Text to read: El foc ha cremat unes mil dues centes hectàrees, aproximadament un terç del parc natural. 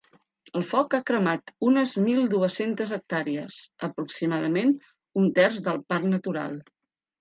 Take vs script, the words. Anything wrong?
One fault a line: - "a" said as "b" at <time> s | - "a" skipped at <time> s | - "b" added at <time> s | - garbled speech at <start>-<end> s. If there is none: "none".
none